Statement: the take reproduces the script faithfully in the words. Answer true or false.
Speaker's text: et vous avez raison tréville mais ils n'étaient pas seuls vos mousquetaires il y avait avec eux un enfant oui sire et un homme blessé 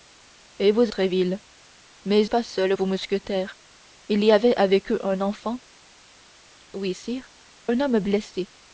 false